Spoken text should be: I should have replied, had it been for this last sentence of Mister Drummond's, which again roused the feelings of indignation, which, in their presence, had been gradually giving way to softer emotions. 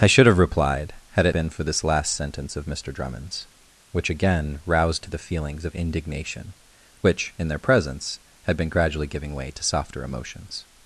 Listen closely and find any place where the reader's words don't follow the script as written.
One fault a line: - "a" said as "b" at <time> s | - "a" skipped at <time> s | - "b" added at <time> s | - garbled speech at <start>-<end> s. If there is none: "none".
none